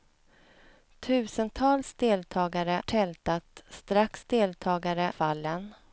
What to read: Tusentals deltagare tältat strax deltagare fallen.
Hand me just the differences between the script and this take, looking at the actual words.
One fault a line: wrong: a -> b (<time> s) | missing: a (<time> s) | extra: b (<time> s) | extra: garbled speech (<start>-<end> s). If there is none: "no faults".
no faults